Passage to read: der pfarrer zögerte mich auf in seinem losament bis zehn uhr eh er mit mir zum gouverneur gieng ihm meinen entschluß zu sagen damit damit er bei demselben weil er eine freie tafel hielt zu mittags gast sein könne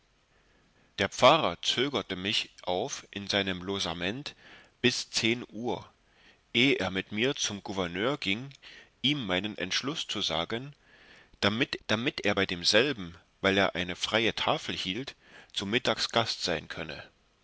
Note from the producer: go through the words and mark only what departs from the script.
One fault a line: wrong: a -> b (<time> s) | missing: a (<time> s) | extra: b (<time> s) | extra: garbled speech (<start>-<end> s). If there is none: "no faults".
no faults